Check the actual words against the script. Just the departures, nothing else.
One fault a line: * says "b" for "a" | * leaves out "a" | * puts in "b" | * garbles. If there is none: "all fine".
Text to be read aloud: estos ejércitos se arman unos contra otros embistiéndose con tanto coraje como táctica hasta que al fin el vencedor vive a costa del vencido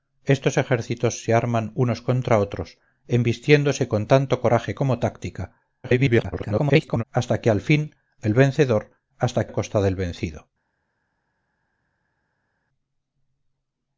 * garbles
* says "hasta" for "vive"